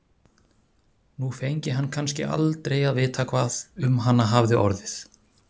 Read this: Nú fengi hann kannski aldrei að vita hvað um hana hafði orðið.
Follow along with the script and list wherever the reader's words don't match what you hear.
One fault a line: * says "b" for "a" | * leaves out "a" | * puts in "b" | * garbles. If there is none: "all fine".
all fine